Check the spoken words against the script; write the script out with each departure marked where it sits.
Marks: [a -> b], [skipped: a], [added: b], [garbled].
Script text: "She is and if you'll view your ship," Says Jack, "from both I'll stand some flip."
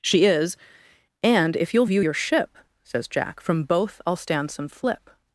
"She is and if you'll view your ship," Says Jack, "from both I'll stand some flip."